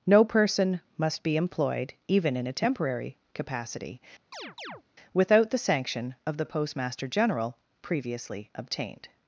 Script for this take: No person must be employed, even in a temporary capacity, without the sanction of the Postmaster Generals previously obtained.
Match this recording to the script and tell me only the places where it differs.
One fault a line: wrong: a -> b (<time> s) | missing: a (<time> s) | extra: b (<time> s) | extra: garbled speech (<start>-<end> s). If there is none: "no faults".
wrong: Generals -> General (7.1 s)